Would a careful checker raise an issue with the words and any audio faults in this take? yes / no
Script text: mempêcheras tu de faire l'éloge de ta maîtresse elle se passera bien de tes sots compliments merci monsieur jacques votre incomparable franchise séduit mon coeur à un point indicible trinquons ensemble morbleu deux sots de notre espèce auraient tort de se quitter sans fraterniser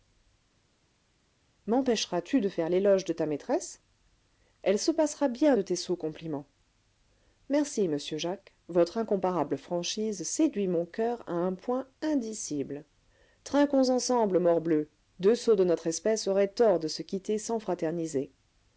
no